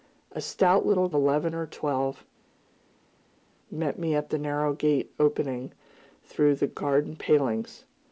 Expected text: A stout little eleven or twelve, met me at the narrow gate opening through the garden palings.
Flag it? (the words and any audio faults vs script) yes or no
no